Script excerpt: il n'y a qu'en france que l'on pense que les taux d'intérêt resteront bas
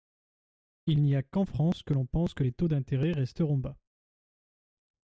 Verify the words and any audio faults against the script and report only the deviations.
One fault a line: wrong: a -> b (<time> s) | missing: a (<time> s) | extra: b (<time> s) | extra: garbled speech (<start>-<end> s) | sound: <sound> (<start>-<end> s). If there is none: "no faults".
no faults